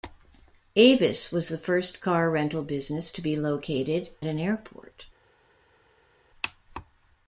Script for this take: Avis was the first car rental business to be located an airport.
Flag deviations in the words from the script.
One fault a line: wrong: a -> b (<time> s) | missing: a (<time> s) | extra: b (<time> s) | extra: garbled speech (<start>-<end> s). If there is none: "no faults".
no faults